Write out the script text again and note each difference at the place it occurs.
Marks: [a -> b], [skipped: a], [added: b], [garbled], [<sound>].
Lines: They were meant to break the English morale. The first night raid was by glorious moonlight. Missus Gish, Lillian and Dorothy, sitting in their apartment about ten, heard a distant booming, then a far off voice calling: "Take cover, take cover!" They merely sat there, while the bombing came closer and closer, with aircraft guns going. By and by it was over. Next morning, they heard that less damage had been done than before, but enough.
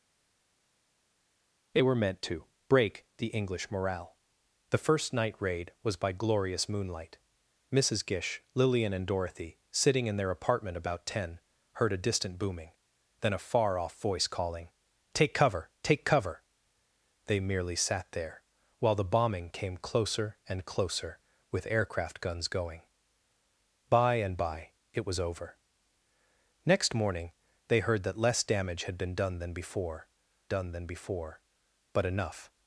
They were meant to break the English morale. The first night raid was by glorious moonlight. Missus Gish, Lillian and Dorothy, sitting in their apartment about ten, heard a distant booming, then a far off voice calling: "Take cover, take cover!" They merely sat there, while the bombing came closer and closer, with aircraft guns going. By and by it was over. Next morning, they heard that less damage had been done than before, [added: done than before] but enough.